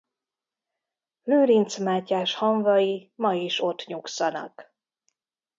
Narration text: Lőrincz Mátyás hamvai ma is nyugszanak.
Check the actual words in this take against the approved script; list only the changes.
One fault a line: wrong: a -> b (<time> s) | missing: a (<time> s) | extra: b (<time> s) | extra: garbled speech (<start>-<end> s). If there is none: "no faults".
extra: ott (3.6 s)